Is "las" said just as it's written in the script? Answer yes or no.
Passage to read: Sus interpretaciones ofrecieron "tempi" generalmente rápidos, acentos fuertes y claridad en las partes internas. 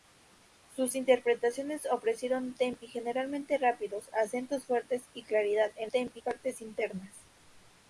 no